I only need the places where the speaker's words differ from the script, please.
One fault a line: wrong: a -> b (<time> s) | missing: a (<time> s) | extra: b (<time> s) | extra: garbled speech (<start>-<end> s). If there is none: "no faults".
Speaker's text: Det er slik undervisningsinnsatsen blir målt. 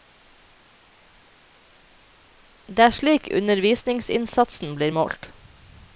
no faults